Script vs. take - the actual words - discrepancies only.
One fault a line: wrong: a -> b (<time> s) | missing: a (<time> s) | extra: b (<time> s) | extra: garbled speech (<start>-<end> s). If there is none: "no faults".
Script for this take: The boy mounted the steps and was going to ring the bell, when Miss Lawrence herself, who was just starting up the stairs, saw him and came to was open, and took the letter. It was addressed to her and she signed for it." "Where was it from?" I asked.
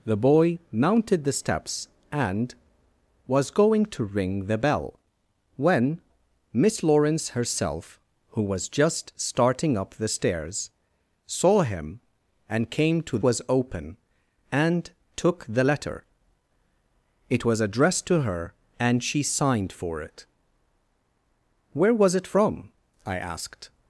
no faults